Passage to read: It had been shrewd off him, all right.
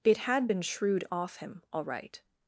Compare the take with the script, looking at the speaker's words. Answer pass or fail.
pass